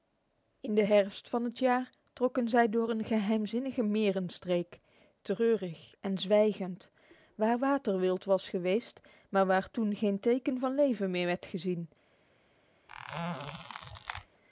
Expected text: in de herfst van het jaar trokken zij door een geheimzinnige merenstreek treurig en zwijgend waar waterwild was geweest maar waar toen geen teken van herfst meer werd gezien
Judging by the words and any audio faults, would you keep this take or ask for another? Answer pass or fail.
fail